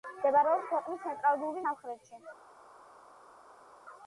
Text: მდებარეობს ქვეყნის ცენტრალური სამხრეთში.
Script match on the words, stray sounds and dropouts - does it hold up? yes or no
yes